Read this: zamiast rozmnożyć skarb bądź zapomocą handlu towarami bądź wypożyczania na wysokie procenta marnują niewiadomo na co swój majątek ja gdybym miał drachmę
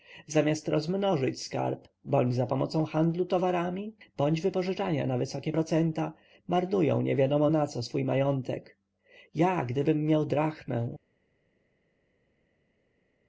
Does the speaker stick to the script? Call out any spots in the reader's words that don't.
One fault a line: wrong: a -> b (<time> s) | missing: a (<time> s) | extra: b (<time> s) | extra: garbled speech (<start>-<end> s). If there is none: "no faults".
no faults